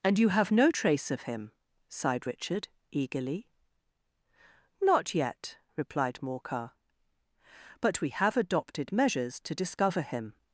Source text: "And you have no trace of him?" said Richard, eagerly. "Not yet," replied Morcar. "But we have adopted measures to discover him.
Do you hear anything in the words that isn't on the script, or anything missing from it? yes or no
yes